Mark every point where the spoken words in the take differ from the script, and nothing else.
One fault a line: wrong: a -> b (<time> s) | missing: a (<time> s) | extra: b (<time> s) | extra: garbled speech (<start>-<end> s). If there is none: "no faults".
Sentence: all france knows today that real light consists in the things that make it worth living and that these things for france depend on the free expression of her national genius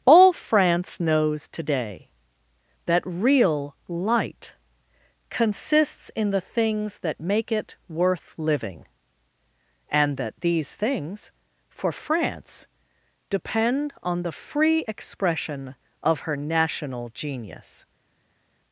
no faults